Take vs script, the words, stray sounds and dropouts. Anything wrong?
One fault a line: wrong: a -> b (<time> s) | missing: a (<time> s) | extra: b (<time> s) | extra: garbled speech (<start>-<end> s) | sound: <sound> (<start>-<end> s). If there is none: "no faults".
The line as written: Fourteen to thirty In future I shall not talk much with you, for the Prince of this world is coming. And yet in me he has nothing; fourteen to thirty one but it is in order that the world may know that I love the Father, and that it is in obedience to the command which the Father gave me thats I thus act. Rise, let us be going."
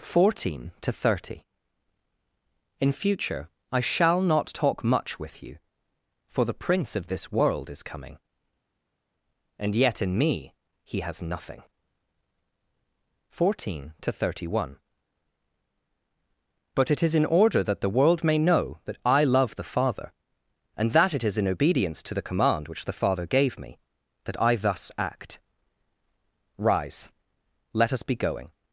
wrong: thats -> that (24.2 s)